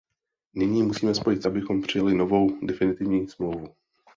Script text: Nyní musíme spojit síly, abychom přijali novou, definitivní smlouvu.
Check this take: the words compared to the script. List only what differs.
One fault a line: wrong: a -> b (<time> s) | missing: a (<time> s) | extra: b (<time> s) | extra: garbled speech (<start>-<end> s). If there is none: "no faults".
missing: síly (1.4 s)